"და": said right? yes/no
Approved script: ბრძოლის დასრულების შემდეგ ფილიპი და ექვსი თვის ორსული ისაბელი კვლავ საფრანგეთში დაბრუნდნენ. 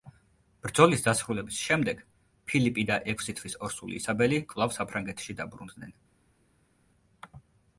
yes